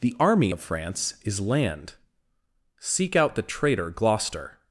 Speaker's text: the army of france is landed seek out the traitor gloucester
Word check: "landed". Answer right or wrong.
wrong